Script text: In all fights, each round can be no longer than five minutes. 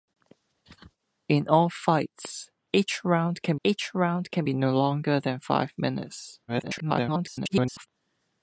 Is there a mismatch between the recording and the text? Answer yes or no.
yes